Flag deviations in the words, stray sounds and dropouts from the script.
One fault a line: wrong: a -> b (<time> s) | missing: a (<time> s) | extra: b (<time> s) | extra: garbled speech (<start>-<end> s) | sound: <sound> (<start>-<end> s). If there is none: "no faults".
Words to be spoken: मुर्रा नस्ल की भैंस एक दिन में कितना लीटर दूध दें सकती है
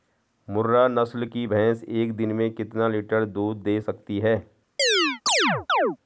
sound: chirp (4.8-6.0 s)